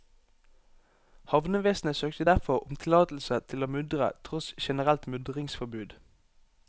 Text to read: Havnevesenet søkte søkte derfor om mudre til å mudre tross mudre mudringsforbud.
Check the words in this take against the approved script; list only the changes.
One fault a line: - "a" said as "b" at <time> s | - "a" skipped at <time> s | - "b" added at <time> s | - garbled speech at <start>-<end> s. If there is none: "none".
- "søkte" skipped at 2.2 s
- "mudre" said as "tillatelse" at 2.8 s
- "mudre" said as "generelt" at 4.6 s